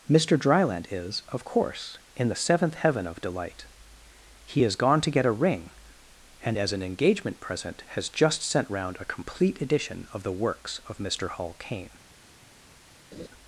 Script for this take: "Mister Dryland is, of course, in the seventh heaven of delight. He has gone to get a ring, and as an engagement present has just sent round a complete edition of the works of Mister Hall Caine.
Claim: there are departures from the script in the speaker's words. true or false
false